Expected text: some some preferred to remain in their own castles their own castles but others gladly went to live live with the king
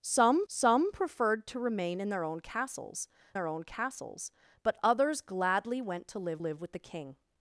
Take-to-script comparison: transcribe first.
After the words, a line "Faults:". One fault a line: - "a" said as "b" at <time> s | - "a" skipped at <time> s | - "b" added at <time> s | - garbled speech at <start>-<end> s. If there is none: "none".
some some preferred to remain in their own castles their own castles but others gladly went to live live with the king
Faults:
none